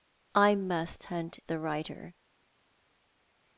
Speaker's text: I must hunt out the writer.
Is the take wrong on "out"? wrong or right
wrong